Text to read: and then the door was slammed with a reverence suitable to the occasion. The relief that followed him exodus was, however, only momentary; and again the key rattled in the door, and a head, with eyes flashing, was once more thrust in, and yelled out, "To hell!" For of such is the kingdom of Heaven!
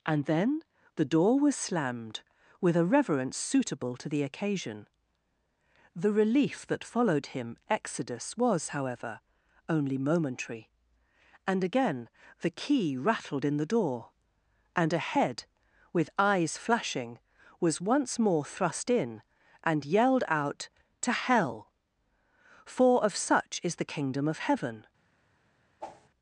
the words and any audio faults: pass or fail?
fail